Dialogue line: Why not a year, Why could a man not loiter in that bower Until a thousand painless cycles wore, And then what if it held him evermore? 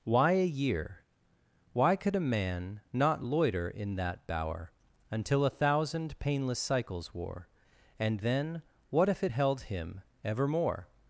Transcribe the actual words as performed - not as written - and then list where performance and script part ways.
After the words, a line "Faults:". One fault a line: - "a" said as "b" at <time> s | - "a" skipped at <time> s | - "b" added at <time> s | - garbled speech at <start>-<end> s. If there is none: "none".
Why a year, Why could a man not loiter in that bower Until a thousand painless cycles wore, And then what if it held him evermore?
Faults:
- "not" skipped at 0.3 s